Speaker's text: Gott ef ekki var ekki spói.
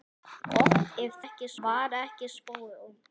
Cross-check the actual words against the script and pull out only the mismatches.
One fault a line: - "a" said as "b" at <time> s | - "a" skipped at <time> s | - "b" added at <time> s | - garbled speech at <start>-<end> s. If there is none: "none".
none